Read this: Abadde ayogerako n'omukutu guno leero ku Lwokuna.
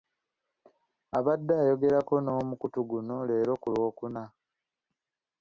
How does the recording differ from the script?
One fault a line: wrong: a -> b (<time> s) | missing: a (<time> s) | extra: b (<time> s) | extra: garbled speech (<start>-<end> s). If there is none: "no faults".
no faults